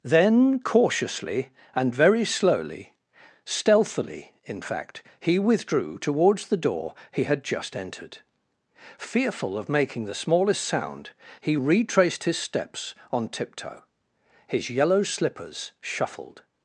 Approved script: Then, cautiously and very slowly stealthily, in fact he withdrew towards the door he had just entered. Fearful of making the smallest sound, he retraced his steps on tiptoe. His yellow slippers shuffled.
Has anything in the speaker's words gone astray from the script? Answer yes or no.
no